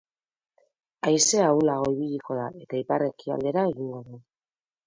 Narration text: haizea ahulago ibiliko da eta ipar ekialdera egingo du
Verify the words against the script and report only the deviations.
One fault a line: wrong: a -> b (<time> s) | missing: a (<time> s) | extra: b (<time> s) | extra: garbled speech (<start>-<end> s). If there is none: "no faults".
no faults